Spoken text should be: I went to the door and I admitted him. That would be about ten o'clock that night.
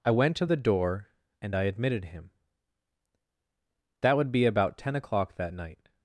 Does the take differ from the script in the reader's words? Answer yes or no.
no